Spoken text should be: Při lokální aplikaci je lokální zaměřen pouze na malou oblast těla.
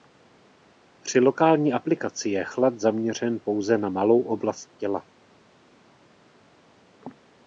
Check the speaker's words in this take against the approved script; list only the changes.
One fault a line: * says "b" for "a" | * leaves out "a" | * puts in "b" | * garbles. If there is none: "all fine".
* says "chlad" for "lokální"